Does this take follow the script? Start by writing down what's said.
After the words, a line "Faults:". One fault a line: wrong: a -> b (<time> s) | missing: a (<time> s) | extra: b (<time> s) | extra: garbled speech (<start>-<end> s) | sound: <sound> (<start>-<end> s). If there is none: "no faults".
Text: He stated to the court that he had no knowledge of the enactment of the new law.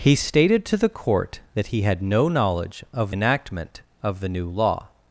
He stated to the court that he had no knowledge of enactment of the new law.
Faults:
missing: the (3.1 s)